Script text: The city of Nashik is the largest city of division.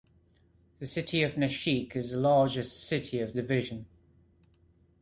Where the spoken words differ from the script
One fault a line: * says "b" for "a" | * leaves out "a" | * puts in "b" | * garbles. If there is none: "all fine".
all fine